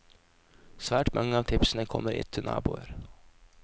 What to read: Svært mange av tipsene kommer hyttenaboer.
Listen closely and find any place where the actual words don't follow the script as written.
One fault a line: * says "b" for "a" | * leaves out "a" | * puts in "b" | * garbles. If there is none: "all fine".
all fine